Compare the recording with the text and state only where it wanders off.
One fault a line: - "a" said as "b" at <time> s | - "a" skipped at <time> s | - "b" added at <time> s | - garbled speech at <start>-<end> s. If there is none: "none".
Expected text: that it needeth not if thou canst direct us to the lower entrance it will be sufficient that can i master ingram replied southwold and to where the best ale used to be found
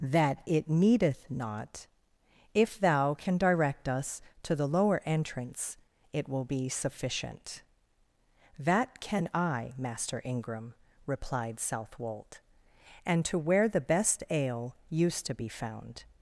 - "canst" said as "can" at 3.1 s